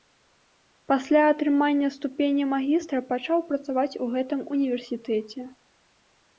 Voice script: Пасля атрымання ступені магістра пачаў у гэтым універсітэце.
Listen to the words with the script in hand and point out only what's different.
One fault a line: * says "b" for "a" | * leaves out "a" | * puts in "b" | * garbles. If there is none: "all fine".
* puts in "працаваць"